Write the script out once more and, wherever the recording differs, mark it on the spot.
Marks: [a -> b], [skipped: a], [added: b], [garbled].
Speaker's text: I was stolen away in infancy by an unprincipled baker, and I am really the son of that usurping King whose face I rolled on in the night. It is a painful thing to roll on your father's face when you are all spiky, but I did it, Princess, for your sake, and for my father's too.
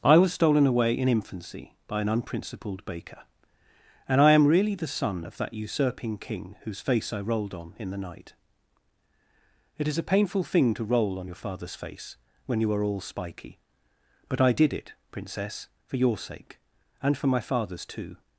I was stolen away in infancy by an unprincipled baker, and I am really the son of that usurping King whose face I rolled on in the night. It is a painful thing to roll on your father's face when you are all spiky, but I did it, Princess, for your sake, and for my father's too.